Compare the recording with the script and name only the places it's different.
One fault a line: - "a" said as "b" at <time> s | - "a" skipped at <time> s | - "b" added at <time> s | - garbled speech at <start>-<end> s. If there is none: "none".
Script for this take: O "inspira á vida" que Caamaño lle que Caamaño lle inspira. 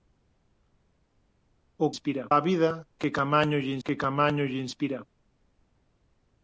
none